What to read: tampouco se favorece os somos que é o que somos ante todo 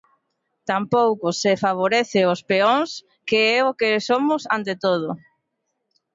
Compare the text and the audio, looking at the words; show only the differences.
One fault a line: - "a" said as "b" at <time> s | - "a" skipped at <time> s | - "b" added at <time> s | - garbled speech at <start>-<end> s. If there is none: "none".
- "somos" said as "peóns" at 2.5 s